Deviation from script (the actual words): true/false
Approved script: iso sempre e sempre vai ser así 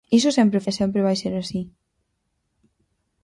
false